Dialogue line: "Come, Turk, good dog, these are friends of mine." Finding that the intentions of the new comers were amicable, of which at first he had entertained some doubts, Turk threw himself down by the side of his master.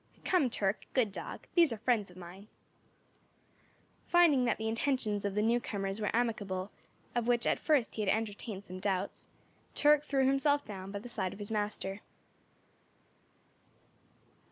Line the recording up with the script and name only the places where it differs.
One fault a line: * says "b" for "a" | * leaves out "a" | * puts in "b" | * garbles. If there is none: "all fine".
all fine